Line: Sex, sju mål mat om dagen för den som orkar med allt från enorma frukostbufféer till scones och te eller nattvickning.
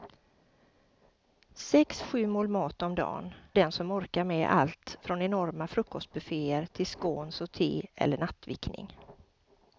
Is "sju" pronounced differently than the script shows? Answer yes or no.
no